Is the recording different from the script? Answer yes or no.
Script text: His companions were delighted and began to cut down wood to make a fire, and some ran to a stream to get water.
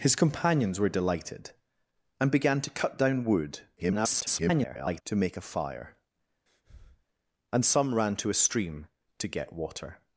yes